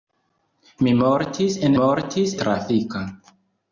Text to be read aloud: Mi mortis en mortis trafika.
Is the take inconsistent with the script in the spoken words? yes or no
no